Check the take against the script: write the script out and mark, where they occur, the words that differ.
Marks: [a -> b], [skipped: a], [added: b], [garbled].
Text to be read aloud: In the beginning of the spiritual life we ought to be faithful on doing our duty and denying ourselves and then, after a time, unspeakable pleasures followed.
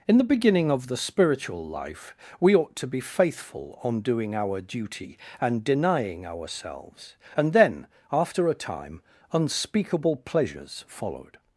In the beginning of the spiritual life we ought to be faithful on doing our duty and denying ourselves and then, after a time, unspeakable pleasures followed.